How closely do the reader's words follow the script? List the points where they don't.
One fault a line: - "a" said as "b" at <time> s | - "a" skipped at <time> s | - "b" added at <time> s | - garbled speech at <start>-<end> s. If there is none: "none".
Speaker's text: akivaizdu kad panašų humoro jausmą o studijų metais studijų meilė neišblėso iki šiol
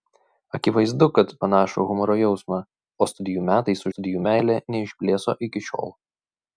none